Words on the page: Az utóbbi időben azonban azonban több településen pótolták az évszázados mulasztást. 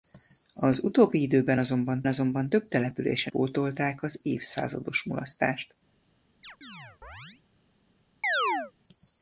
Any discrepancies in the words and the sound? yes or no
yes